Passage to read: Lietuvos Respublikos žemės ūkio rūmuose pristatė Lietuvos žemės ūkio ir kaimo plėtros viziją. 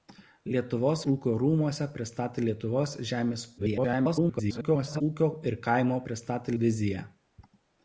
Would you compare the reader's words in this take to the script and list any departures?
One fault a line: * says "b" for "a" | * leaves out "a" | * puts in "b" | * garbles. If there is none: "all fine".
* leaves out "Respublikos žemės"
* garbles
* says "pristatė" for "plėtros"